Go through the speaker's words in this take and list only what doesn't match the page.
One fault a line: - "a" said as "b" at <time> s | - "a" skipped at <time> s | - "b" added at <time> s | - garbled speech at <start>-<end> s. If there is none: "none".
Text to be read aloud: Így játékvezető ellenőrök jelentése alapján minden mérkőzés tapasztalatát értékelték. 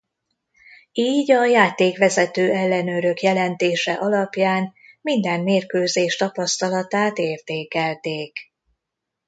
- "a" added at 1.3 s